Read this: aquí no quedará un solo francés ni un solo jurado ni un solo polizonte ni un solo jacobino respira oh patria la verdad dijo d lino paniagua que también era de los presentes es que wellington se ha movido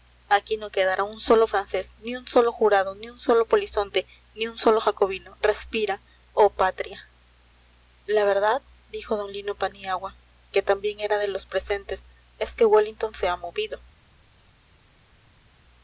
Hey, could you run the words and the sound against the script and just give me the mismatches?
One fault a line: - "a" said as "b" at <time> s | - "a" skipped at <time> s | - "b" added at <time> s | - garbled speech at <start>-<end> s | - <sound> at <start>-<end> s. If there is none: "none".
none